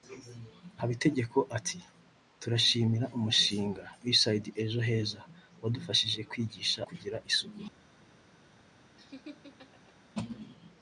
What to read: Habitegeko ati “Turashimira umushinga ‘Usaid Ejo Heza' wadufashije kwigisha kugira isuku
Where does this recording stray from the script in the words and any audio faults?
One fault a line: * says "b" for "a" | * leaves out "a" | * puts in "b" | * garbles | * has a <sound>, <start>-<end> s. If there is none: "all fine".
* has a laugh, 9.0-10.0 s